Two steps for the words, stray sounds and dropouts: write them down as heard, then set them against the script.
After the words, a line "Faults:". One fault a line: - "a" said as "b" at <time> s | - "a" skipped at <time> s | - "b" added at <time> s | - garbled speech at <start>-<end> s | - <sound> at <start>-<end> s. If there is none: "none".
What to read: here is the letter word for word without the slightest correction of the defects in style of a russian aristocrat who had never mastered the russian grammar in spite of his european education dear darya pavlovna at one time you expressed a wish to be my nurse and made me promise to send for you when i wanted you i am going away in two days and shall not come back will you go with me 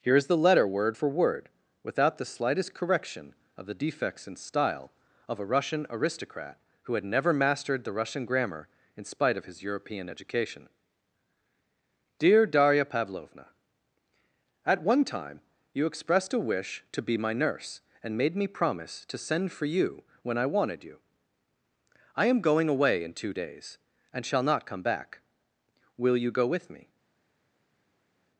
here is the letter word for word without the slightest correction of the defects in style of a russian aristocrat who had never mastered the russian grammar in spite of his european education dear darya pavlovna at one time you expressed a wish to be my nurse and made me promise to send for you when i wanted you i am going away in two days and shall not come back will you go with me
Faults:
none